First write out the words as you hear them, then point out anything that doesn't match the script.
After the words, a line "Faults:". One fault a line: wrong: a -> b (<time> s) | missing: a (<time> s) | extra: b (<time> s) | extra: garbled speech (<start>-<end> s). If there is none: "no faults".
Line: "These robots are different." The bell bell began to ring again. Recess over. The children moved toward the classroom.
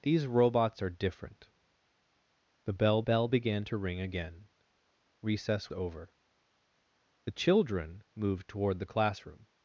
"These robots are different." The bell bell began to ring again. Recess over. The children moved toward the classroom.
Faults:
no faults